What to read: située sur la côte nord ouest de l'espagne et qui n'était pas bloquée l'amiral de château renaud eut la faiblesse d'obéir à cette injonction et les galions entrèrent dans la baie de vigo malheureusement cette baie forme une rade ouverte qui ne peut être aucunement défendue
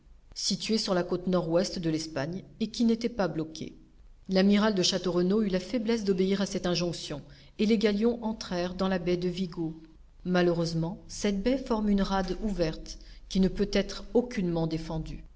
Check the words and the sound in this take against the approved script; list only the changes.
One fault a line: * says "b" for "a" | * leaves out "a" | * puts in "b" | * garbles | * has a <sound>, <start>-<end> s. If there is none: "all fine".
all fine